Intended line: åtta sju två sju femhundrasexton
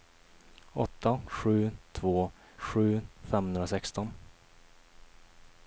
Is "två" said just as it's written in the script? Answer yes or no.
yes